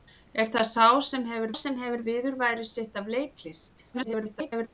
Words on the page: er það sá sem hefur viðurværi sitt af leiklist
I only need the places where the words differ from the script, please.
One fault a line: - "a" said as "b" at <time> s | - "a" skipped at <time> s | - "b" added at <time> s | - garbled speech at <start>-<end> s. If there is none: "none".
- "sem hefur" added at 1.6 s
- garbled speech at 3.9-4.7 s